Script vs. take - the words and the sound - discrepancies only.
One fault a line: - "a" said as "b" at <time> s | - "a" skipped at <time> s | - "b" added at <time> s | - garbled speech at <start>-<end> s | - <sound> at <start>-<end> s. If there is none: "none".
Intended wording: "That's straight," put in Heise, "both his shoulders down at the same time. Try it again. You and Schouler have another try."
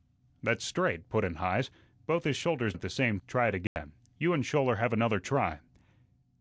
- "down" skipped at 2.7 s
- "time" skipped at 3.2 s
- dropout at 3.7-3.8 s